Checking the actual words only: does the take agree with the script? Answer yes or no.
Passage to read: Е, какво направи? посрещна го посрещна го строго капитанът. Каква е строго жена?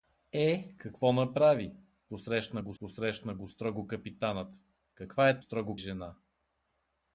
yes